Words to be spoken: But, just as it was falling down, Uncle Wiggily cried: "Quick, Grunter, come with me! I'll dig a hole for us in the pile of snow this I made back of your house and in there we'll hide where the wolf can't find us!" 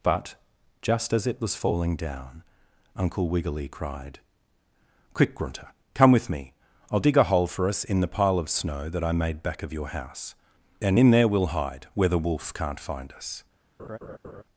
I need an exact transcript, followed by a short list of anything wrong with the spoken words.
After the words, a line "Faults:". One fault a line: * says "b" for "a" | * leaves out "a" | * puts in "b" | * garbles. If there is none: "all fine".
But, just as it was falling down, Uncle Wiggily cried: "Quick, Grunter, come with me! I'll dig a hole for us in the pile of snow that I made back of your house and in there we'll hide where the wolf can't find us!"
Faults:
* says "that" for "this"